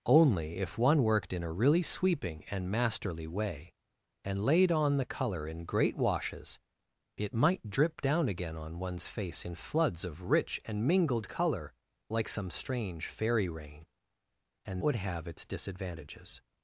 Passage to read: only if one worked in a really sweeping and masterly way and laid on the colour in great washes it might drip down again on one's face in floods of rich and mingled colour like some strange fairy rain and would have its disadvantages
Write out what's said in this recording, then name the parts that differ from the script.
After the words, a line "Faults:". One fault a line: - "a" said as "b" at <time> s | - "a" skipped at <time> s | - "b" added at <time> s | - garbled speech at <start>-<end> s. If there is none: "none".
only if one worked in a really sweeping and masterly way and laid on the colour in great washes it might drip down again on one's face in floods of rich and mingled colour like some strange fairy rain and would have its disadvantages
Faults:
none